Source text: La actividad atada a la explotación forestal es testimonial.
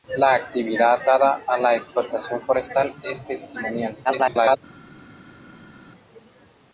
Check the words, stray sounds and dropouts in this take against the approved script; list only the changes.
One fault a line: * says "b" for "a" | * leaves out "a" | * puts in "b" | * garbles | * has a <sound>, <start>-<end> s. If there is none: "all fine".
* garbles